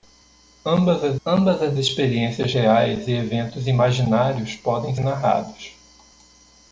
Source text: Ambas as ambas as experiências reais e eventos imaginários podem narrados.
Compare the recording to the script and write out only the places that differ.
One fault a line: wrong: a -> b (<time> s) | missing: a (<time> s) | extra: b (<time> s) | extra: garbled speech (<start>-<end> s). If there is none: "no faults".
no faults